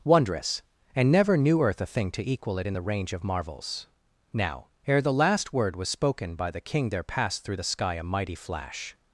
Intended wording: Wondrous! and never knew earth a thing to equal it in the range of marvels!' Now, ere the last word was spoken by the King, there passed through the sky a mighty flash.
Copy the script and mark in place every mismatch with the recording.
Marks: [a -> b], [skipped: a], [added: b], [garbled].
Wondrous! and never knew earth a thing to equal it in the range of marvels!' Now, ere the last word was spoken by the King, there passed through the sky a mighty flash.